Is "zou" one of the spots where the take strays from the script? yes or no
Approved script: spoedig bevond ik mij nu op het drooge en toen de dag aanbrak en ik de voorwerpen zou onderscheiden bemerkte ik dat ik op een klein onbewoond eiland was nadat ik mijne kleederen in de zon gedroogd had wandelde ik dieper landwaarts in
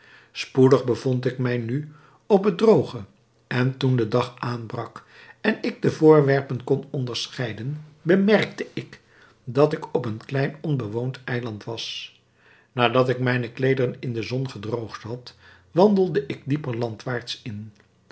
yes